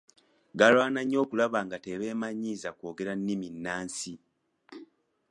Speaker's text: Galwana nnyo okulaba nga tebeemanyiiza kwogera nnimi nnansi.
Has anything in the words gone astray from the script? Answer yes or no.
no